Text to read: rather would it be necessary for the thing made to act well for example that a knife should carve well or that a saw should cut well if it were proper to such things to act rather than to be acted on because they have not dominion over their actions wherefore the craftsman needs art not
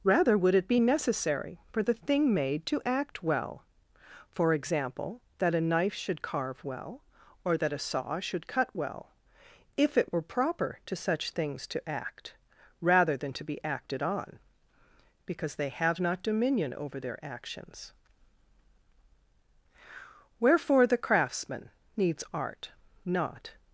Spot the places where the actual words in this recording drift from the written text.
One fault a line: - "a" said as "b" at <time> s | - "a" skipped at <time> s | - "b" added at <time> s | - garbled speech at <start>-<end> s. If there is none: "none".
none